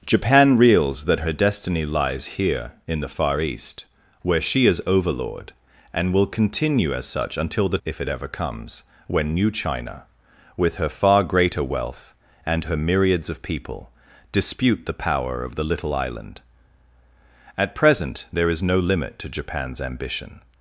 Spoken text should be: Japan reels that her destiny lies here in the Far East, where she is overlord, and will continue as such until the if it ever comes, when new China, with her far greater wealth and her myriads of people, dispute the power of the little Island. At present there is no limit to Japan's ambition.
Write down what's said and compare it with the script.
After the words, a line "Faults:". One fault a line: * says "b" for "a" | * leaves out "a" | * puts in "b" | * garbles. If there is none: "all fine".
Japan reels that her destiny lies here in the Far East, where she is overlord, and will continue as such until the if it ever comes, when new China, with her far greater wealth and her myriads of people, dispute the power of the little Island. At present there is no limit to Japan's ambition.
Faults:
all fine